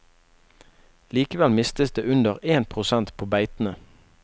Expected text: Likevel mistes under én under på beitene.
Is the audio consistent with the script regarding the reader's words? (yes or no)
no